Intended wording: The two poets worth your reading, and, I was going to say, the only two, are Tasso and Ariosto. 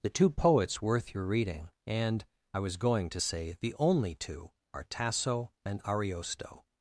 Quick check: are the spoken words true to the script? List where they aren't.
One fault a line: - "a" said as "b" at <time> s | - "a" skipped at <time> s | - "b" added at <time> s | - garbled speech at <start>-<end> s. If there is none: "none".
none